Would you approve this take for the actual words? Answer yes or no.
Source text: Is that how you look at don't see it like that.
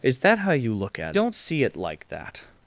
yes